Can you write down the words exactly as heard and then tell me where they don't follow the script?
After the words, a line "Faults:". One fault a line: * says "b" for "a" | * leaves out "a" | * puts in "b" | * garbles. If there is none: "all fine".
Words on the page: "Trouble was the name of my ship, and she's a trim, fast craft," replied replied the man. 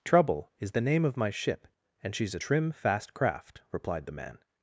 "Trouble is the name of my ship, and she's a trim, fast craft," replied the man.
Faults:
* says "is" for "was"
* leaves out "replied"